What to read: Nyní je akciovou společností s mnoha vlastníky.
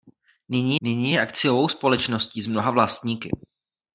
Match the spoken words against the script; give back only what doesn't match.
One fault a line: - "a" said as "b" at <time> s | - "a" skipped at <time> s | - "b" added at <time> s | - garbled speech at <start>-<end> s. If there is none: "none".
- "nyní" added at 0.8 s